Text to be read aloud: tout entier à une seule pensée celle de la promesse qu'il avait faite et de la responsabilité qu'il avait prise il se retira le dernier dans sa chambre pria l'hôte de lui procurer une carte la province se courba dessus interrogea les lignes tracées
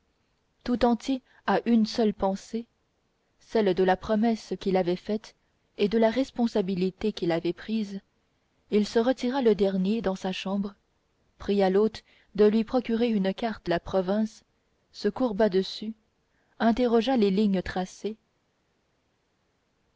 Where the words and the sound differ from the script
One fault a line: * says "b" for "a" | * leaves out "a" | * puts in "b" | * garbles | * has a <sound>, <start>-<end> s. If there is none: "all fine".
all fine